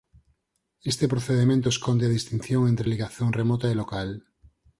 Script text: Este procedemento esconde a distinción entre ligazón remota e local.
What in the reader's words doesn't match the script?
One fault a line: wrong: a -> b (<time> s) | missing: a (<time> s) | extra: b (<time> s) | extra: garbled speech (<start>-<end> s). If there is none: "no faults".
no faults